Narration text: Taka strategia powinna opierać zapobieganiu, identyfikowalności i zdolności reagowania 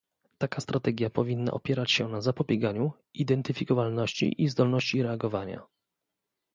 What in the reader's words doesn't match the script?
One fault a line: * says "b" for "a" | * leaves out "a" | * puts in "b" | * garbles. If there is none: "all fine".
* puts in "się na"